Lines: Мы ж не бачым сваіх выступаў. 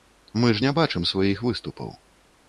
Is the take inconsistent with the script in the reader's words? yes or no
no